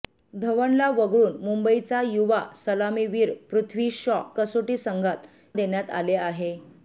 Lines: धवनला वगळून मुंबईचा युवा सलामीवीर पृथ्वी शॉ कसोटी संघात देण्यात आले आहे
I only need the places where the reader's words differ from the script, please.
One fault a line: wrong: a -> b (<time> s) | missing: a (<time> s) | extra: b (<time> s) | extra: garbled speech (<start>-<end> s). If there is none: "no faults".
no faults